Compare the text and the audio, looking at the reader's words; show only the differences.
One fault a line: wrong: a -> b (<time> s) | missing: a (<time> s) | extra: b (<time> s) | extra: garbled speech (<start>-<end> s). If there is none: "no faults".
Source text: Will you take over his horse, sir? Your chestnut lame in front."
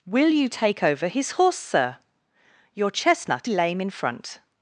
no faults